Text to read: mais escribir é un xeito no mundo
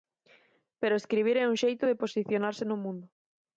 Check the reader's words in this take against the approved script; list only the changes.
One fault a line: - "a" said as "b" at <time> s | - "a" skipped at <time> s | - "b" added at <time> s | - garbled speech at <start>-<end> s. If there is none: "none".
- "mais" said as "pero" at 0.8 s
- "de posicionarse" added at 1.9 s